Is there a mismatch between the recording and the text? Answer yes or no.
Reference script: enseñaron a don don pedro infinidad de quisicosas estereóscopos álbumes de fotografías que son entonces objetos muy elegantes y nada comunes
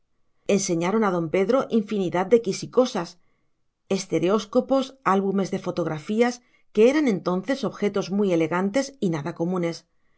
yes